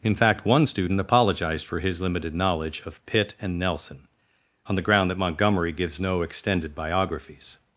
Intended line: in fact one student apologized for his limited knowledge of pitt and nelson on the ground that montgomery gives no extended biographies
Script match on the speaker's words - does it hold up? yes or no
yes